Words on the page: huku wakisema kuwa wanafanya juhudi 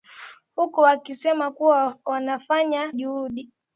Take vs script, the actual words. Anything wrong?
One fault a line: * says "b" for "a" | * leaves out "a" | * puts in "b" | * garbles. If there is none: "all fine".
all fine